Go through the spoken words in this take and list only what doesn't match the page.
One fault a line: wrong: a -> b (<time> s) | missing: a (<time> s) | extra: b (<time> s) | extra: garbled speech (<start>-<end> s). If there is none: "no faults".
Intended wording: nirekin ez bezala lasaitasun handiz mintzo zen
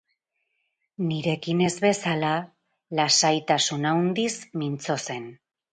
no faults